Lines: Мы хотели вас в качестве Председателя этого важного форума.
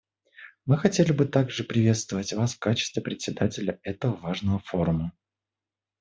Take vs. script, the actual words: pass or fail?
fail